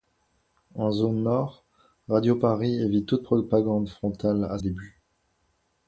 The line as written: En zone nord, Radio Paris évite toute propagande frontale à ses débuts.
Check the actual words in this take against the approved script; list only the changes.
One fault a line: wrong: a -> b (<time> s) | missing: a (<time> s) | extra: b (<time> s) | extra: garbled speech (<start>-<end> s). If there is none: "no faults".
missing: ses (4.6 s)